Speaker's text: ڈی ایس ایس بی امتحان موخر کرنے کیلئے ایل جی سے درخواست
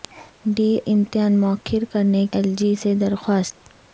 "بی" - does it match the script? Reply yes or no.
no